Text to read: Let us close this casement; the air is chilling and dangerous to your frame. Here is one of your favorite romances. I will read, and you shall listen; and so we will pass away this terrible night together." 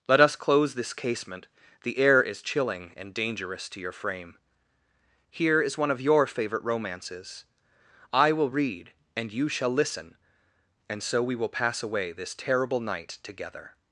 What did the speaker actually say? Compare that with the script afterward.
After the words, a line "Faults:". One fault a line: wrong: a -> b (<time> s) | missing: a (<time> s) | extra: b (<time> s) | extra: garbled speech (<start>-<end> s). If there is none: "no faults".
Let us close this casement; the air is chilling and dangerous to your frame. Here is one of your favorite romances. I will read, and you shall listen; and so we will pass away this terrible night together."
Faults:
no faults